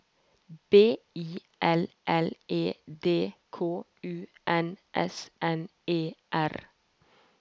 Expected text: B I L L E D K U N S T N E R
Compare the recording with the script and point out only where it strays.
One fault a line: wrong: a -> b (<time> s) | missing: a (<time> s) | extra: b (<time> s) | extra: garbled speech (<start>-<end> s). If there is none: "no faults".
missing: T (5.3 s)